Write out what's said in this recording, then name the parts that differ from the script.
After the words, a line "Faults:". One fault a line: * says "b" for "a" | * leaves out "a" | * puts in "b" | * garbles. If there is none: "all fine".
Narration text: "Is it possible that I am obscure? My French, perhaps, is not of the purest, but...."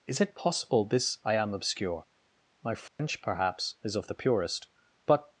"Is it possible this I am obscure? My French, perhaps, is of the purest, but...."
Faults:
* says "this" for "that"
* leaves out "not"